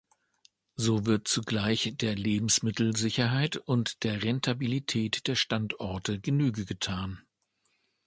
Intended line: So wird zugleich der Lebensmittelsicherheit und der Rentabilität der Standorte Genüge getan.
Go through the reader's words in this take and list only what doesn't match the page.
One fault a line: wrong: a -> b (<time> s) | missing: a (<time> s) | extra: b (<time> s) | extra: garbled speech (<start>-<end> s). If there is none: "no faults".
no faults